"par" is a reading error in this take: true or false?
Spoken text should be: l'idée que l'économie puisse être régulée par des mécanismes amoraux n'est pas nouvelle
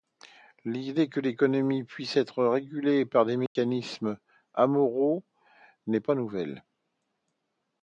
false